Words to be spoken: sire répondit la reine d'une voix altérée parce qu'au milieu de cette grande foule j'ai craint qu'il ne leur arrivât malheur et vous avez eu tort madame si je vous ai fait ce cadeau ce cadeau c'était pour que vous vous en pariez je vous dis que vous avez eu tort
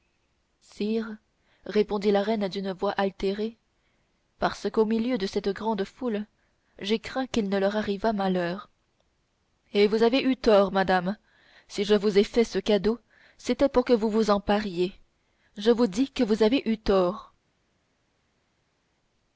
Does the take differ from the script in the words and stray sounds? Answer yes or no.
yes